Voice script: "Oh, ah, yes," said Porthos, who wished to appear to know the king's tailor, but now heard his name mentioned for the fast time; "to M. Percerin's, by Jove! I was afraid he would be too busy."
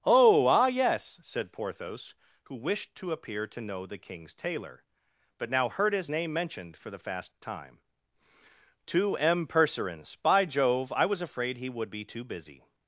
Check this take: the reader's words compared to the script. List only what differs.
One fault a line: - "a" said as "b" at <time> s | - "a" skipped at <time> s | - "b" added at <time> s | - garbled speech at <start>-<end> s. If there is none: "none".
none